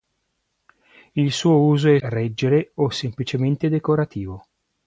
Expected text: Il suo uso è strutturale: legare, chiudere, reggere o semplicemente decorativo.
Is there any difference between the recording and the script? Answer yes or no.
yes